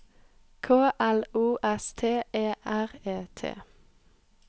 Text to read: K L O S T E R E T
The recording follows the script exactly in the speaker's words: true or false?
true